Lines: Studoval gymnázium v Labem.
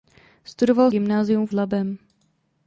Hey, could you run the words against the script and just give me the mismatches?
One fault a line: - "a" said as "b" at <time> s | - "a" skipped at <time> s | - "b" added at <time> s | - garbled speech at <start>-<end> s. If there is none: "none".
none